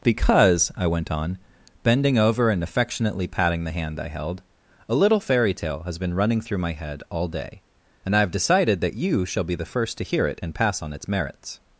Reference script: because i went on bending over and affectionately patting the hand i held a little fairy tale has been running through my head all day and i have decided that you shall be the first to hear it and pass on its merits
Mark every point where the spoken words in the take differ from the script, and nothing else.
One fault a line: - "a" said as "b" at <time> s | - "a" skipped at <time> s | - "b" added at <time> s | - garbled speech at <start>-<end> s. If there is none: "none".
none